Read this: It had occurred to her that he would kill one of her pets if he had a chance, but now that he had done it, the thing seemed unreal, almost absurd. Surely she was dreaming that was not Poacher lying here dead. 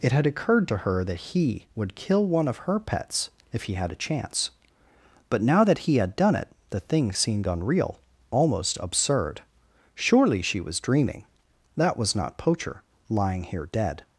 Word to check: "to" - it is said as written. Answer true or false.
true